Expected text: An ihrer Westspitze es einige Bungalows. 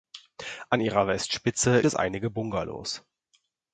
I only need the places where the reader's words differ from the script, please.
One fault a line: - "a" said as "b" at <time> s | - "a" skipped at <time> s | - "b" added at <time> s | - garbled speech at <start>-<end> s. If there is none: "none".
none